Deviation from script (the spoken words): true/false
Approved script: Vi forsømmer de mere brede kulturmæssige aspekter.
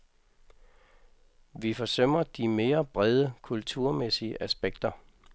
false